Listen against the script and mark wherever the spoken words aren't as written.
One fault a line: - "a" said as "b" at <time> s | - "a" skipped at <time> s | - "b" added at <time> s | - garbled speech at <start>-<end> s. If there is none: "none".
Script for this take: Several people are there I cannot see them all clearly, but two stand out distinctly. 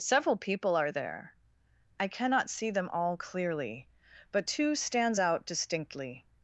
- "stand" said as "stands" at 4.8 s